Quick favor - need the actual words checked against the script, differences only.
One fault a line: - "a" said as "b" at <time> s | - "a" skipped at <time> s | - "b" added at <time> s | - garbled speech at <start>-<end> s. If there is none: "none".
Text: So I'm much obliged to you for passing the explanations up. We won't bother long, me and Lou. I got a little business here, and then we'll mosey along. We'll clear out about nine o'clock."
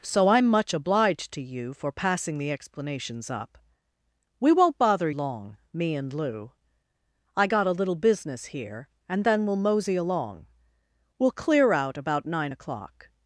none